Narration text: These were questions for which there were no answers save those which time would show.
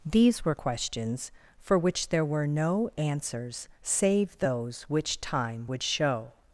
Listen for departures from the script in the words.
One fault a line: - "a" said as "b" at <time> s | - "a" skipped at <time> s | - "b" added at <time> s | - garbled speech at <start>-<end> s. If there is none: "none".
none